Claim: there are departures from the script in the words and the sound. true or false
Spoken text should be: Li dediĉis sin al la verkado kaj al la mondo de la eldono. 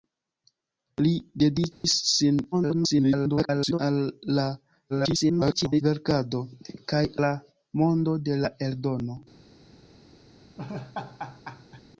true